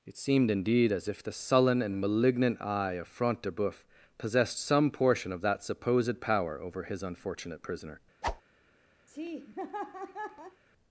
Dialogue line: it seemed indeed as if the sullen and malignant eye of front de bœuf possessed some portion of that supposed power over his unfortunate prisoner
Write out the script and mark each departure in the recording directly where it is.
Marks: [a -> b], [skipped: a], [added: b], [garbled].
it seemed indeed as if the sullen and malignant eye of front de bœuf possessed some portion of that supposed power over his unfortunate prisoner